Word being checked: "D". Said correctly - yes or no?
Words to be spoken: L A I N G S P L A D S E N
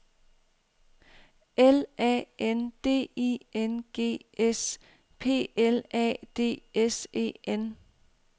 yes